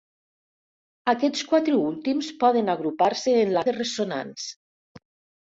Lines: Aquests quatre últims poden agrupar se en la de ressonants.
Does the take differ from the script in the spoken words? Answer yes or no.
no